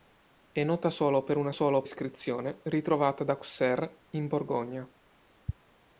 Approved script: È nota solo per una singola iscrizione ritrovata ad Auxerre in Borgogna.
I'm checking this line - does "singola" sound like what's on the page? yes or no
no